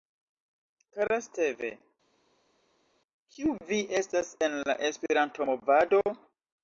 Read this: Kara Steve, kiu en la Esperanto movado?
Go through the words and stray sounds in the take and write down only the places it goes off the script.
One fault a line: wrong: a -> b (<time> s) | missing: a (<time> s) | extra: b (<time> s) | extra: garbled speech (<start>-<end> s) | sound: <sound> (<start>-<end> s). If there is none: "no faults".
extra: vi estas (3.7 s)